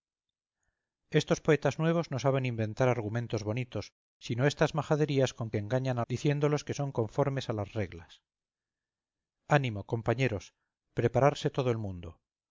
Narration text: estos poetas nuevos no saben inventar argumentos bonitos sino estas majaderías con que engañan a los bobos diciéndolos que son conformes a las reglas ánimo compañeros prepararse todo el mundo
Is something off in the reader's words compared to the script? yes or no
yes